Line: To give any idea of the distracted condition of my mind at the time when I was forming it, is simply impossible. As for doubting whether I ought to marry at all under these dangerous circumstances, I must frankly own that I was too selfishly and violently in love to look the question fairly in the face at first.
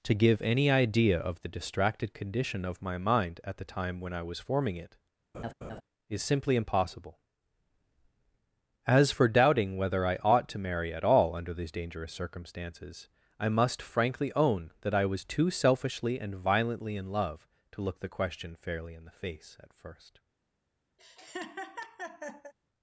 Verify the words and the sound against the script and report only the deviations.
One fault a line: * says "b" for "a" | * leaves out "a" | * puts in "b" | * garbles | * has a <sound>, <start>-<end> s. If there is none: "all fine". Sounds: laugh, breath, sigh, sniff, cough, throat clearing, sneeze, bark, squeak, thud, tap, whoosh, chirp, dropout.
* has a laugh, 5.3-5.8 s
* has a laugh, 21.0-22.5 s